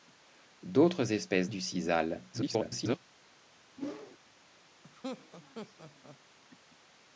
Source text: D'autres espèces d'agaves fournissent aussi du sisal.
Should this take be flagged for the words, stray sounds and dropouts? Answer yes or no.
yes